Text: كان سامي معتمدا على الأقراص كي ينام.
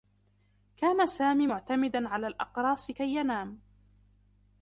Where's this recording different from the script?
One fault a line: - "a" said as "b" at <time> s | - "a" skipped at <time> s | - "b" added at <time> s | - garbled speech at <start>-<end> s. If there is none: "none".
none